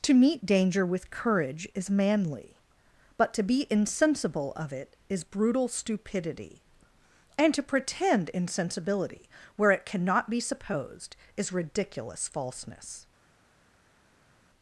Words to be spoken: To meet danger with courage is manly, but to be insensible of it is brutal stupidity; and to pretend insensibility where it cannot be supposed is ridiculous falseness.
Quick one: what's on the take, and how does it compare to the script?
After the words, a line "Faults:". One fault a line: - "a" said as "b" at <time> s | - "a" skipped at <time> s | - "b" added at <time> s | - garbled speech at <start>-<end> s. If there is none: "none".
To meet danger with courage is manly, but to be insensible of it is brutal stupidity; and to pretend insensibility where it cannot be supposed is ridiculous falseness.
Faults:
none